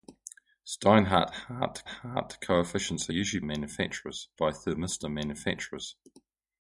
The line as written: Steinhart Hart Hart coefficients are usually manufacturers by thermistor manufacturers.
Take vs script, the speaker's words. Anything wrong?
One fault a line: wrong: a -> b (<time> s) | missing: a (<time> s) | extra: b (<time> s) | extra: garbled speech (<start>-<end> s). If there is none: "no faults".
no faults